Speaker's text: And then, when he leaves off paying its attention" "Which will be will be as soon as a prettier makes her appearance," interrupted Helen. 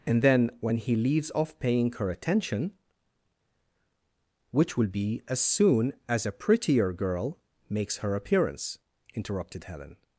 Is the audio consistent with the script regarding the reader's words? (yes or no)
no